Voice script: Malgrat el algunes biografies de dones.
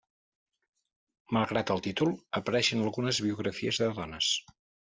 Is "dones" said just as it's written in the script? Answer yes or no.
yes